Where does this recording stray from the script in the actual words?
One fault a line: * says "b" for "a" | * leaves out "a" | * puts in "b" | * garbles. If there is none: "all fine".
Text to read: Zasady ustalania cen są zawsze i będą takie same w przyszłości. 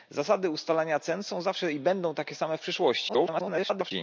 * garbles